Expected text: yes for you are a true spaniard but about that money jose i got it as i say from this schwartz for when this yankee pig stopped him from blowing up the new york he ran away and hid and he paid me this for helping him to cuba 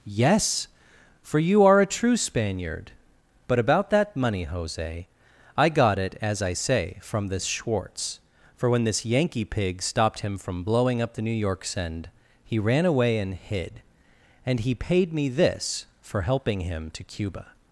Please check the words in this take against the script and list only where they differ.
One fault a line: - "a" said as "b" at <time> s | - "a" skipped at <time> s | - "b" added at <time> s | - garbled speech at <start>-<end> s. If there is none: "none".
- "send" added at 11.7 s